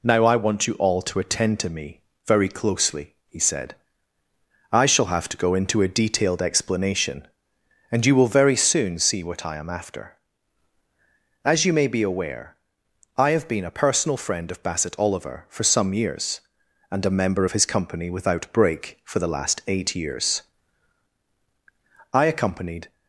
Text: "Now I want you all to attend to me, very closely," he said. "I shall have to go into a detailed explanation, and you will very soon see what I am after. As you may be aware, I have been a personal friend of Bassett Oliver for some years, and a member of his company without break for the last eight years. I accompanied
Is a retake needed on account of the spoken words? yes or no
no